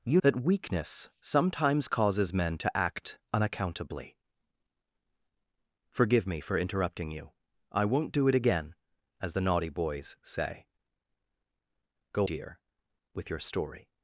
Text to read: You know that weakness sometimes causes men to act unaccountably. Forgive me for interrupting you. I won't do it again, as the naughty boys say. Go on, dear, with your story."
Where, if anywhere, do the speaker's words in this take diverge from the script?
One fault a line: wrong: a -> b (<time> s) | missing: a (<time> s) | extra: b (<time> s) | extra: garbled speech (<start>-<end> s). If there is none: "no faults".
missing: know (0.2 s)
missing: on (12.3 s)